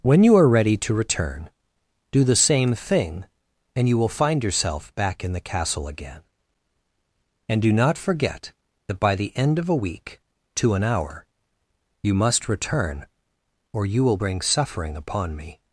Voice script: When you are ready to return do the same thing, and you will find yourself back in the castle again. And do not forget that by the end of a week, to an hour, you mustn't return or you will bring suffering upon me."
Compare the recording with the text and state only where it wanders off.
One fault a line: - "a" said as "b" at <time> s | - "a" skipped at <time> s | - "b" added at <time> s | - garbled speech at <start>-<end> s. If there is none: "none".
- "mustn't" said as "must" at 12.2 s